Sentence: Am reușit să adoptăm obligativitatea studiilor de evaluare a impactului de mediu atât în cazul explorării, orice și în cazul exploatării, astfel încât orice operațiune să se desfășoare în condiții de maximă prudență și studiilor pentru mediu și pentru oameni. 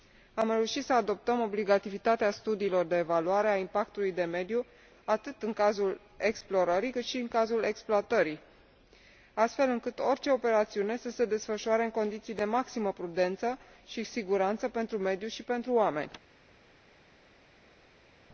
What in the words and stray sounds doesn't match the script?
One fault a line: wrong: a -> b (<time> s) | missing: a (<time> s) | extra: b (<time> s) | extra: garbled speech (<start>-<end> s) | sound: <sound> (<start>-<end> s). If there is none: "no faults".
wrong: orice -> cât (6.9 s)
wrong: studiilor -> siguranță (14.0 s)